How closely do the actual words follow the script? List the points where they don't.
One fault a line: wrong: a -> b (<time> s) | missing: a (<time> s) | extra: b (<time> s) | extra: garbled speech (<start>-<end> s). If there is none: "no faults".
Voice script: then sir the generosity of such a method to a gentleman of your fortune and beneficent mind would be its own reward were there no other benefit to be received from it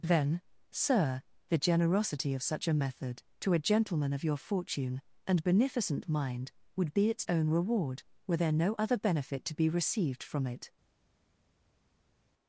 no faults